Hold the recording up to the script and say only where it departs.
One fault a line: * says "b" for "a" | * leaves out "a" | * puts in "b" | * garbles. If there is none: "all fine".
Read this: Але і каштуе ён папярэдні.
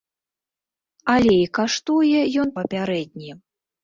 all fine